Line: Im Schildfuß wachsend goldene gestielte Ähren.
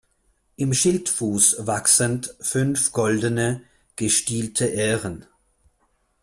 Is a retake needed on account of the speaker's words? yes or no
yes